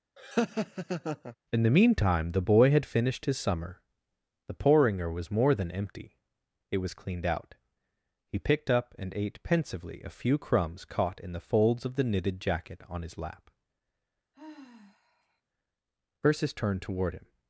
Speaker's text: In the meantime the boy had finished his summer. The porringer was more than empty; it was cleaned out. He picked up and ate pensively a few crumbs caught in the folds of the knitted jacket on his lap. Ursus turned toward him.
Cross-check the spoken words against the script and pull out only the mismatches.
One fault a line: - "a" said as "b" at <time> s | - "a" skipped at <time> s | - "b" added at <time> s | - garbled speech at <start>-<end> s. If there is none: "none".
none